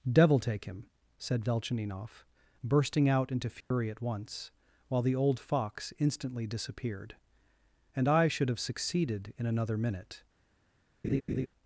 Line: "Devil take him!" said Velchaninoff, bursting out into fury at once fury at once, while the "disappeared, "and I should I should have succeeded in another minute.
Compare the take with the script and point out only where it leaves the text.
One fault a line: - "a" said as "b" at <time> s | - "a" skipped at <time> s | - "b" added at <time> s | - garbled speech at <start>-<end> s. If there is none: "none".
- "fury at once while the" said as "while the old fox instantly" at 4.9 s
- "I should" skipped at 8.5 s